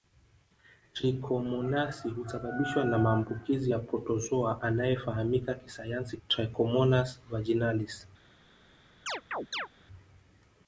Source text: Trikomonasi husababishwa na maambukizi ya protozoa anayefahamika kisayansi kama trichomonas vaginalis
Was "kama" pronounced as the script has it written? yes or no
no